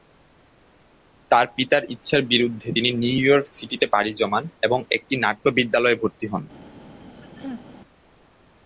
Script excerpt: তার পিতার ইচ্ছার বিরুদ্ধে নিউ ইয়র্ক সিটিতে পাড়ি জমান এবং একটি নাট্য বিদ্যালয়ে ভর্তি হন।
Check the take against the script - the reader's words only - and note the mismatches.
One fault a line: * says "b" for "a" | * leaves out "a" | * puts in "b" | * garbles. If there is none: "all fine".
* puts in "তিনি"